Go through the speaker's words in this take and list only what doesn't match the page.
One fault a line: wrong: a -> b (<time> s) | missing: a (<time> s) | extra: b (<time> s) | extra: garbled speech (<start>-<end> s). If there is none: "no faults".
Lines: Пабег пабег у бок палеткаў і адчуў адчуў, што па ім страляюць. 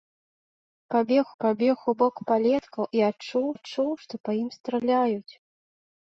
no faults